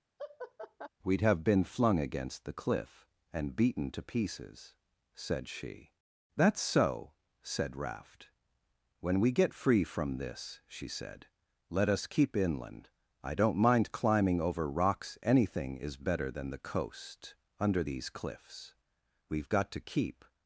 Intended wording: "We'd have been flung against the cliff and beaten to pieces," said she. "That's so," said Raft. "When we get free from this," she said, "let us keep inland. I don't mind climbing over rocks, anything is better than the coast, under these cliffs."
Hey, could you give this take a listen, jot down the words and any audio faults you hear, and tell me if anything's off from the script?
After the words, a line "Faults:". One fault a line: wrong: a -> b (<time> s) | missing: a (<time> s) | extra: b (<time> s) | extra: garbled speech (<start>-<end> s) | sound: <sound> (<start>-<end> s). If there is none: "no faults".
"We'd have been flung against the cliff and beaten to pieces," said she. "That's so," said Raft. "When we get free from this," she said, "let us keep inland. I don't mind climbing over rocks, anything is better than the coast, under these cliffs." "We've got to keep
Faults:
sound: laugh (0.2-0.9 s)
extra: We've got to keep (19.3 s)